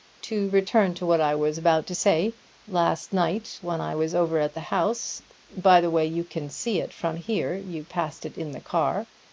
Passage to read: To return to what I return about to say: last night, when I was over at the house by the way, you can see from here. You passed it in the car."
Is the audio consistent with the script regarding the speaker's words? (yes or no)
no